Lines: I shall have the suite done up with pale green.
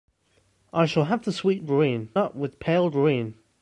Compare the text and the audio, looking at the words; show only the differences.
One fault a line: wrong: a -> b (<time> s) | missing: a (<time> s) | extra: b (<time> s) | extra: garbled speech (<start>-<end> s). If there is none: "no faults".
wrong: done -> green (1.6 s)